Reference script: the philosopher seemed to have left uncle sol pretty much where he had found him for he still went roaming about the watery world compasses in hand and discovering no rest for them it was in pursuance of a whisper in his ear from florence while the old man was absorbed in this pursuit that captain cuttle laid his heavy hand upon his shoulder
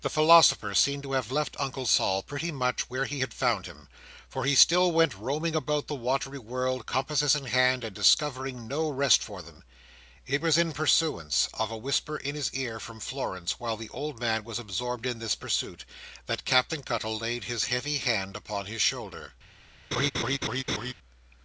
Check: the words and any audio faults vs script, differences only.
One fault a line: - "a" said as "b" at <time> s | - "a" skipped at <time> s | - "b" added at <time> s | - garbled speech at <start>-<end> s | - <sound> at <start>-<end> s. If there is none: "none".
- laugh at 19.9-20.9 s